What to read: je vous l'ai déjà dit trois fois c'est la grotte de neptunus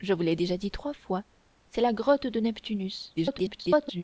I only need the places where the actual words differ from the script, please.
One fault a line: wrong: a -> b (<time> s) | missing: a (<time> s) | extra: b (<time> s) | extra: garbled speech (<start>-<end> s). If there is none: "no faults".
extra: garbled speech (3.2-4.0 s)